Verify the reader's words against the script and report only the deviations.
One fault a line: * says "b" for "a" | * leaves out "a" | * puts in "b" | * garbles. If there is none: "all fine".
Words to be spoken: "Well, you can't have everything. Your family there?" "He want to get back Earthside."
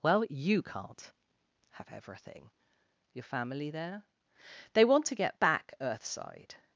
* says "They" for "He"